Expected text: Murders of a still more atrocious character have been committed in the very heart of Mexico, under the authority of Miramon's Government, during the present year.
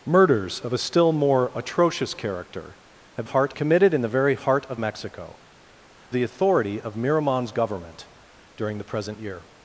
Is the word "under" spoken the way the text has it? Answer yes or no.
no